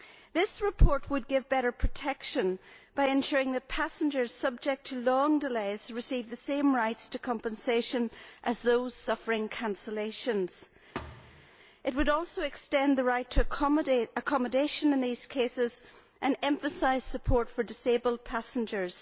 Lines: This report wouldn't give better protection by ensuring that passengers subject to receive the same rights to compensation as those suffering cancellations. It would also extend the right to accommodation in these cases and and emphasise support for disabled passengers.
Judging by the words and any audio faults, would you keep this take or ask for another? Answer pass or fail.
fail